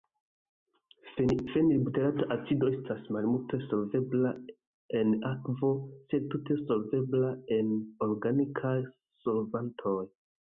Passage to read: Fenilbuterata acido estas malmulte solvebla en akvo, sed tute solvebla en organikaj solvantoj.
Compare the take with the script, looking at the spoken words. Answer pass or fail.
pass